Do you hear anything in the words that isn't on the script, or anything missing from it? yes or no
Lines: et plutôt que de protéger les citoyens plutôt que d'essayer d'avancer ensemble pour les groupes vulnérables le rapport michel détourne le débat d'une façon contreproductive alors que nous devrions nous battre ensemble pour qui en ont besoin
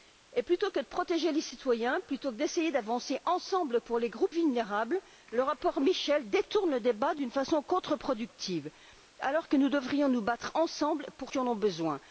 no